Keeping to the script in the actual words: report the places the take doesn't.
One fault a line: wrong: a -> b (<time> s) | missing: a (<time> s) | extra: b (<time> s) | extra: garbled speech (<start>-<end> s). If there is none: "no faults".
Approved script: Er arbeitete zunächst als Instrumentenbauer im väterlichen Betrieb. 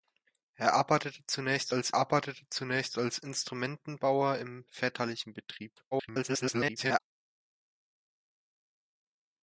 extra: arbeitete zunächst als (1.9 s)
extra: garbled speech (5.9-7.0 s)